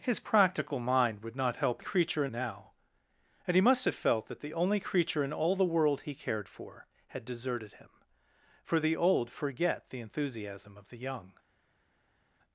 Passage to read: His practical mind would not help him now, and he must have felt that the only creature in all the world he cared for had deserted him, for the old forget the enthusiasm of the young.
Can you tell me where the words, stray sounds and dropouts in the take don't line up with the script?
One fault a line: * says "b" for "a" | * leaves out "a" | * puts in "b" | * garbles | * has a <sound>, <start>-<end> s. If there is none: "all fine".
* says "creature" for "him"